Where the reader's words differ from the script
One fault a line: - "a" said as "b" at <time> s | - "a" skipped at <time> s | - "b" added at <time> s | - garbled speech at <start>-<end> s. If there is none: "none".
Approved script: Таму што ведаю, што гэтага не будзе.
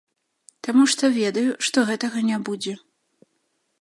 none